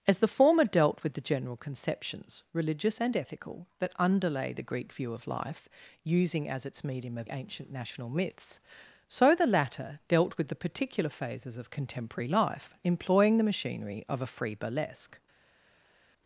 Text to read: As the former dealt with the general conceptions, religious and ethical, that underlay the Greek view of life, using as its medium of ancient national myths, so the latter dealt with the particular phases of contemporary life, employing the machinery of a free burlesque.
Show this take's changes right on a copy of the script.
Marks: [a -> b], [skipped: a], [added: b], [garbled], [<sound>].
As the former dealt with the general conceptions, religious and ethical, that underlay the Greek view of life, using as its medium of ancient national myths, so the latter dealt with the particular phases of contemporary life, employing the machinery of a free burlesque.